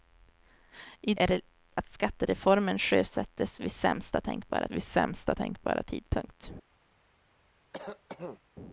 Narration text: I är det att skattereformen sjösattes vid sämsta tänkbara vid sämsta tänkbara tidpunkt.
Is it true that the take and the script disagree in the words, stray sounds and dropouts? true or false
true